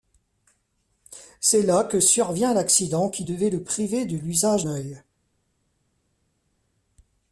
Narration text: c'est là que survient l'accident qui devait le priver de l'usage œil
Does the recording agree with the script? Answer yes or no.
yes